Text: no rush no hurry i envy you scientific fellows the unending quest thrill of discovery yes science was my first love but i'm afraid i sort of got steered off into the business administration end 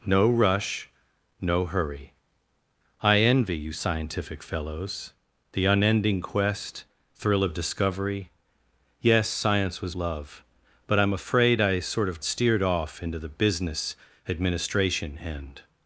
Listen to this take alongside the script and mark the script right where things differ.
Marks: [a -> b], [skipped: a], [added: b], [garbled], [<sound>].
no rush no hurry i envy you scientific fellows the unending quest thrill of discovery yes science was [skipped: my first] love but i'm afraid i sort of [skipped: got] steered off into the business administration end